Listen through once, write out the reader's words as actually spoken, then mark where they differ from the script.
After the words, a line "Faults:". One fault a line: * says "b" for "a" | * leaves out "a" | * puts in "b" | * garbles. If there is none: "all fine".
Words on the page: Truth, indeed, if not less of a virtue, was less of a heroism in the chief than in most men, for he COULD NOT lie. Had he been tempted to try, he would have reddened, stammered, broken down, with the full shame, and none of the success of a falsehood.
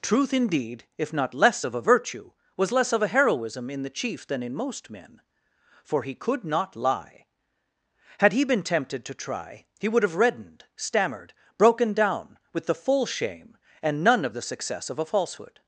Truth, indeed, if not less of a virtue, was less of a heroism in the chief than in most men, for he COULD NOT lie. Had he been tempted to try, he would have reddened, stammered, broken down, with the full shame, and none of the success of a falsehood.
Faults:
all fine